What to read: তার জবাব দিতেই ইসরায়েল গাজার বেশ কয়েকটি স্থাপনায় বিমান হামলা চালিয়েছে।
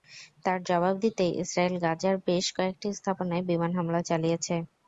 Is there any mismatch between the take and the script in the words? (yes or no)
no